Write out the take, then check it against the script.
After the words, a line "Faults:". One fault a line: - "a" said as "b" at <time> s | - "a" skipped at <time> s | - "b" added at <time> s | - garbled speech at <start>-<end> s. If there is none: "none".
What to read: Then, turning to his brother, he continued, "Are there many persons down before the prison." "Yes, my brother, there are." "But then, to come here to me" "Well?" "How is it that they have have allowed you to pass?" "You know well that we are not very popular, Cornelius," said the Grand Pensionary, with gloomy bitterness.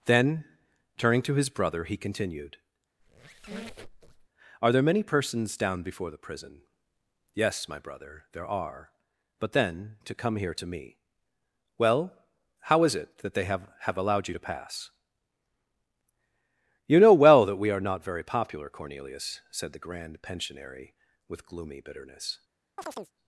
Then, turning to his brother, he continued, "Are there many persons down before the prison." "Yes, my brother, there are." "But then, to come here to me" "Well?" "How is it that they have have allowed you to pass?" "You know well that we are not very popular, Cornelius," said the Grand Pensionary, with gloomy bitterness.
Faults:
none